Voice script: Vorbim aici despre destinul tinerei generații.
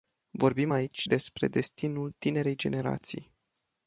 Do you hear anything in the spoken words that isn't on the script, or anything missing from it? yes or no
no